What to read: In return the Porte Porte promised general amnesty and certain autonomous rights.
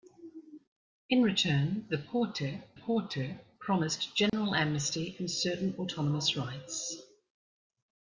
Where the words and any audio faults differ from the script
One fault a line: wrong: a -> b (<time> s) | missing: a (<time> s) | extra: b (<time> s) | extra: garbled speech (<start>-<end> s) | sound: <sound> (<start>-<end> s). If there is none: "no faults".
sound: dropout (4.3-4.3 s)